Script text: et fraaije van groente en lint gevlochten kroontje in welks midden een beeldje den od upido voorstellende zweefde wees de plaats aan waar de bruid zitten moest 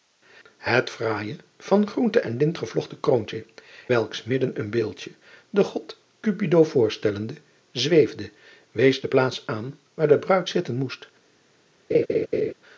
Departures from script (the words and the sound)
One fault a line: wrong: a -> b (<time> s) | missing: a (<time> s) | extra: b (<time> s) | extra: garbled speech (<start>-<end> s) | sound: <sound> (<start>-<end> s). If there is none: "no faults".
missing: in (3.5 s)
sound: laugh (11.9-12.5 s)